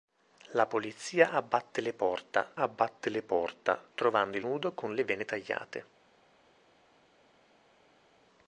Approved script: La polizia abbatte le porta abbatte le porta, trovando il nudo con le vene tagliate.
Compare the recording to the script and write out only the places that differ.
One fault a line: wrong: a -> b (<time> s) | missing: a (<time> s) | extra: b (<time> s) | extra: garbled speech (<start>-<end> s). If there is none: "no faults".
no faults